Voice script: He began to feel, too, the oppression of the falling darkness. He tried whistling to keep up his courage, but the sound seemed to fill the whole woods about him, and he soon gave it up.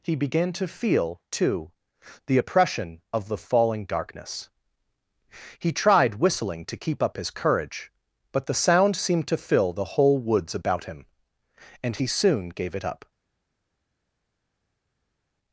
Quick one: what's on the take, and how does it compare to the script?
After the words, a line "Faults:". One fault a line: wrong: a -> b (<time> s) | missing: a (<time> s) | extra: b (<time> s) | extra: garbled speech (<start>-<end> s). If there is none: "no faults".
He began to feel, too, the oppression of the falling darkness. He tried whistling to keep up his courage, but the sound seemed to fill the whole woods about him, and he soon gave it up.
Faults:
no faults